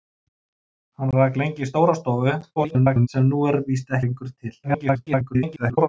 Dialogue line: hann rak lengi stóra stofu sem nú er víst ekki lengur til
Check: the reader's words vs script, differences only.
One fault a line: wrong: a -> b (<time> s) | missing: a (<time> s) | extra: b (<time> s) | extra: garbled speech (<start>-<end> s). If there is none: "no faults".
extra: garbled speech (2.6-3.1 s)
missing: ekki (4.0 s)
extra: garbled speech (4.6-5.9 s)